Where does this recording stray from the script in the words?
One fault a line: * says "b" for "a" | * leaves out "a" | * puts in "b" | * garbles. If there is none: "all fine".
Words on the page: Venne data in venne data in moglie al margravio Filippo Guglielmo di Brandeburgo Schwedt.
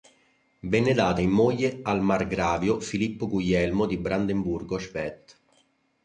* leaves out "venne data in"